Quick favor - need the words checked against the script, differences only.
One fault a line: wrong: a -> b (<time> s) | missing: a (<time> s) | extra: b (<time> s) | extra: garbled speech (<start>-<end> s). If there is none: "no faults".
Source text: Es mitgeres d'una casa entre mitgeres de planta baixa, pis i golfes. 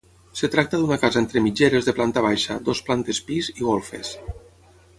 wrong: mitgeres -> tracta (0.5 s)
extra: dues plantes (2.7 s)